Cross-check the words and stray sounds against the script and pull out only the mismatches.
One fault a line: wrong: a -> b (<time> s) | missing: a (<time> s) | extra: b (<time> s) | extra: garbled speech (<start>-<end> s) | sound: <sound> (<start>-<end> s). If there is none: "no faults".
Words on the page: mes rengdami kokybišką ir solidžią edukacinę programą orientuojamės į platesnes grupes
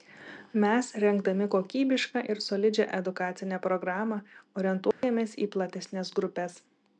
sound: dropout (4.9-5.0 s)